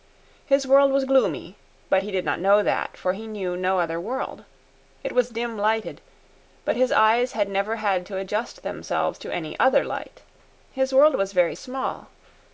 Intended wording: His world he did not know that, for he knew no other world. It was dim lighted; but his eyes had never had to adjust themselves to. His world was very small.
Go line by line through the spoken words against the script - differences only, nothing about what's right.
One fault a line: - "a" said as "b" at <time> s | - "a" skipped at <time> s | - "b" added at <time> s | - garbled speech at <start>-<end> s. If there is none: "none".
- "was gloomy but" added at 0.9 s
- "any other light" added at 9.3 s